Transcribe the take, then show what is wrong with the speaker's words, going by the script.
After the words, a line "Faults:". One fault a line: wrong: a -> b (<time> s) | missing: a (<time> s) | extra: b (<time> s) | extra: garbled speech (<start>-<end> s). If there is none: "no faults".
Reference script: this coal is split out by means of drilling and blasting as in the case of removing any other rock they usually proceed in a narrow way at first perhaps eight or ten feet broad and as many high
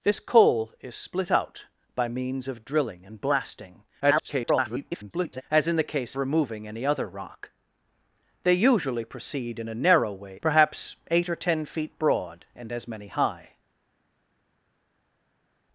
this coal is split out by means of drilling and blasting [garbled] as in the case removing any other rock they usually proceed in a narrow way perhaps eight or ten feet broad and as many high
Faults:
extra: garbled speech (4.0-5.4 s)
missing: of (6.1 s)
missing: at first (10.4 s)